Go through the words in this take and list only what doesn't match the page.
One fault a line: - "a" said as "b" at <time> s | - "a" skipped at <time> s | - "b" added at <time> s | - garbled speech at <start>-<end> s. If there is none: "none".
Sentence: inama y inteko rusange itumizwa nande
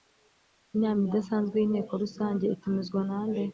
- "idasanzwe" added at 1.1 s